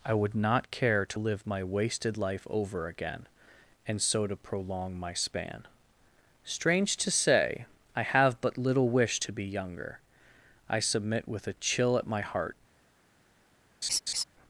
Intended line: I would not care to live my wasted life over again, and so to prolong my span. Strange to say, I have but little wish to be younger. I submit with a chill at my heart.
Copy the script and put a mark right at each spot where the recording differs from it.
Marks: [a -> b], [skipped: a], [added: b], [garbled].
I would not care to live my wasted life over again, and so to prolong my span. Strange to say, I have but little wish to be younger. I submit with a chill at my heart.